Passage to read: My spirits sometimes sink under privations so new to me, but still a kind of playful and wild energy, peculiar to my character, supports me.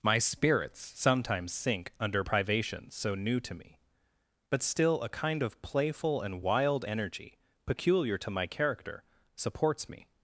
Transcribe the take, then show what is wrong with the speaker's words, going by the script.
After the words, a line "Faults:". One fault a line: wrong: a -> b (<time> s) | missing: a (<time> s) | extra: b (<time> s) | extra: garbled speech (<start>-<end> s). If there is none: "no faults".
My spirits sometimes sink under privations so new to me, but still a kind of playful and wild energy, peculiar to my character, supports me.
Faults:
no faults